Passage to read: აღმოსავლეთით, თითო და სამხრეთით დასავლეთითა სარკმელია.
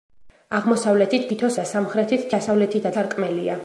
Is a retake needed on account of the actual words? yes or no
no